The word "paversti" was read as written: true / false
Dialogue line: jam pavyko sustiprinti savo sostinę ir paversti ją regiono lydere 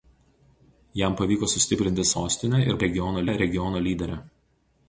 false